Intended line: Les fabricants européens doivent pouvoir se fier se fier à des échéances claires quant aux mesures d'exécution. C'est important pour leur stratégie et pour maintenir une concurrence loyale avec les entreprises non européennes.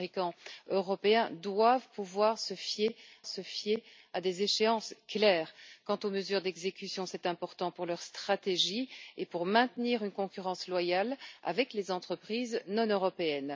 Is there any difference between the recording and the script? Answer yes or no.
no